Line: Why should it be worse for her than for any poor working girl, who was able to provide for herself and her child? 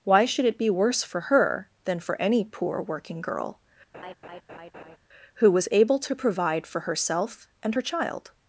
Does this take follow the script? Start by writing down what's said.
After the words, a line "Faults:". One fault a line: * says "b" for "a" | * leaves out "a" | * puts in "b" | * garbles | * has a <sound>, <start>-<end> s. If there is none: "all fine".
Why should it be worse for her than for any poor working girl, who was able to provide for herself and her child?
Faults:
* has a laugh, 3.9-5.0 s